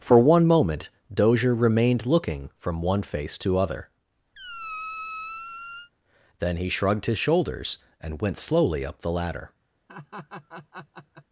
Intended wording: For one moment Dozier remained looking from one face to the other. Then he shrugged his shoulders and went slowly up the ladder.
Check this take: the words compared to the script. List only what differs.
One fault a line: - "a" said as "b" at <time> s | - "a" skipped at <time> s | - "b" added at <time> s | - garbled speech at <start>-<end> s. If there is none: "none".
- "the" skipped at 3.6 s